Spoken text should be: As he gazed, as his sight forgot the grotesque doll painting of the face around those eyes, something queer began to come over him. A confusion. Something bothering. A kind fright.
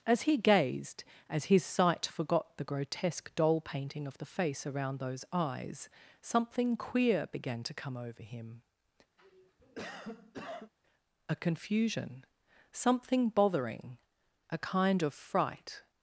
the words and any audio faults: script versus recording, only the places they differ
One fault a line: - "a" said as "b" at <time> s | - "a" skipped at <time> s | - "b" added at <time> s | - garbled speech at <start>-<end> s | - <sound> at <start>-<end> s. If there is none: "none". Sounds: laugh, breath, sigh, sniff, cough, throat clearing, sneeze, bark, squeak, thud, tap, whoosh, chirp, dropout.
- cough at 9.2-10.7 s
- "of" added at 15.0 s